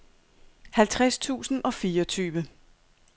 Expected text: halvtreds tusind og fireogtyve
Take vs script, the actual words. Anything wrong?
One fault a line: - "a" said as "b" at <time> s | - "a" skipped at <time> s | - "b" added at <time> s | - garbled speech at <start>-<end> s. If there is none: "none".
none